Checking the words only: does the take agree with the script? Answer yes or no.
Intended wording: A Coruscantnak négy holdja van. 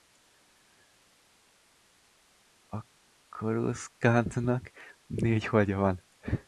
yes